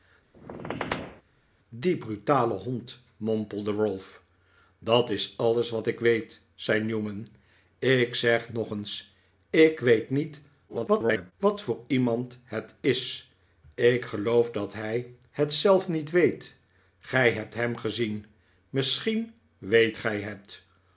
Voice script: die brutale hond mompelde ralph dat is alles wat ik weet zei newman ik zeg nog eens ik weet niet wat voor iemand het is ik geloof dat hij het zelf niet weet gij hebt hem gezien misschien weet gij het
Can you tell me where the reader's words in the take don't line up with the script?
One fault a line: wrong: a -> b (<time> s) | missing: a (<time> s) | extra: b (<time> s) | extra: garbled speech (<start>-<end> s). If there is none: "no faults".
extra: garbled speech (10.7-11.3 s)